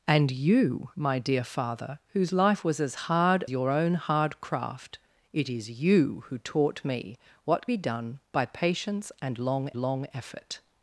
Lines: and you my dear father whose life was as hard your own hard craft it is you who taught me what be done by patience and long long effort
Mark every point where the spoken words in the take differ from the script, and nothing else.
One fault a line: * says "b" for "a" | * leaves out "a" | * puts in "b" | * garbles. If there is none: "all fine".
all fine